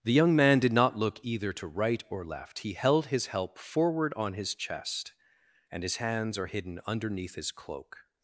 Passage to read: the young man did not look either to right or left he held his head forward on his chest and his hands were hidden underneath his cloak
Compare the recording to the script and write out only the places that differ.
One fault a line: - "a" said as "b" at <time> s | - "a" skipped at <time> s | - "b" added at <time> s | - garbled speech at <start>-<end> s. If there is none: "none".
- "head" said as "help" at 3.3 s
- "were" said as "are" at 6.4 s